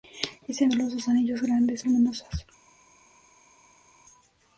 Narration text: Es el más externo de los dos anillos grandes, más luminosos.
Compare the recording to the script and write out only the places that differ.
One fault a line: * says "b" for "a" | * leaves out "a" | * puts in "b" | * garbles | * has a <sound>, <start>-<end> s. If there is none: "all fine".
* leaves out "más externo"
* leaves out "más"